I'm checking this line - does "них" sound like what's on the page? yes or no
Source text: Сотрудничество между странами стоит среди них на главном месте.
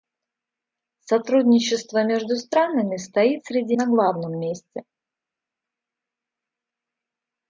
no